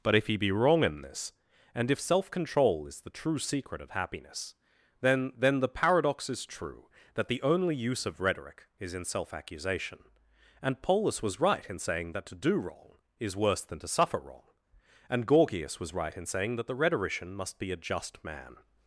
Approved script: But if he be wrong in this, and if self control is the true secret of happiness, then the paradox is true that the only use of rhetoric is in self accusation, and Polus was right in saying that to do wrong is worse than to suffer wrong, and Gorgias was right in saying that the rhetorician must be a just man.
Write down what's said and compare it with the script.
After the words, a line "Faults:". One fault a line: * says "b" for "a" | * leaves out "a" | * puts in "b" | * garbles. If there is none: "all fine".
But if he be wrong in this, and if self control is the true secret of happiness, then then the paradox is true that the only use of rhetoric is in self accusation, and Polus was right in saying that to do wrong is worse than to suffer wrong, and Gorgias was right in saying that the rhetorician must be a just man.
Faults:
* puts in "then"